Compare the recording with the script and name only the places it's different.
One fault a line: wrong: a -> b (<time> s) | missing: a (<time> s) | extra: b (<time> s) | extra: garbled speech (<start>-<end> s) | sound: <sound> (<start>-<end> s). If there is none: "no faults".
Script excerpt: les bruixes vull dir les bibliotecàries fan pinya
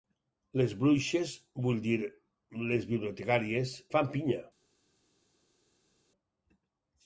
no faults